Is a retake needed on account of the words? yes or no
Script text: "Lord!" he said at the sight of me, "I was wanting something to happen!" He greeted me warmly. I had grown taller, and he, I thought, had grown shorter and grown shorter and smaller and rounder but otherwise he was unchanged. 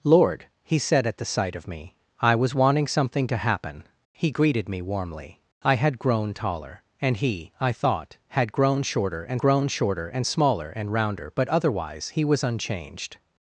no